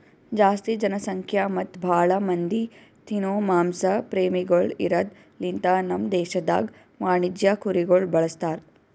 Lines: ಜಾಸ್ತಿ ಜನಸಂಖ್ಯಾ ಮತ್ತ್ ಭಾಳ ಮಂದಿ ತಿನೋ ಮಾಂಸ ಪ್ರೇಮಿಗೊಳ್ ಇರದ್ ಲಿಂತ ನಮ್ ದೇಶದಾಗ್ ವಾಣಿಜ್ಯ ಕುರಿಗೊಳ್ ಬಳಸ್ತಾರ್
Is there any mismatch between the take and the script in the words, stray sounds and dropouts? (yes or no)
no